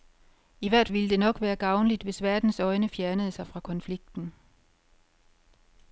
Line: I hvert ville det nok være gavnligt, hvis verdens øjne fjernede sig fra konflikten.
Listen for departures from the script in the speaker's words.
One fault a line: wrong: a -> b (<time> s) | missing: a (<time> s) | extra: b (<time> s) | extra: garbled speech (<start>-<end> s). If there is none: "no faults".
no faults